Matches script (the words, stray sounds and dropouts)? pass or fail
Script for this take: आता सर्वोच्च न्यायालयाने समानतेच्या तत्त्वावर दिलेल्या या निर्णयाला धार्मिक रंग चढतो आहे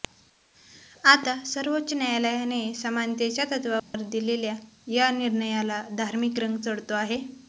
fail